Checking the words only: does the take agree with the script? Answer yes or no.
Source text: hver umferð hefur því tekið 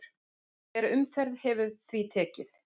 yes